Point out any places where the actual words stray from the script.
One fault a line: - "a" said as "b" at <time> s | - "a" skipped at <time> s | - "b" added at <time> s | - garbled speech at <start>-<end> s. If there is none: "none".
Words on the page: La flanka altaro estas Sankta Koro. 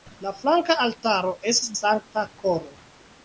none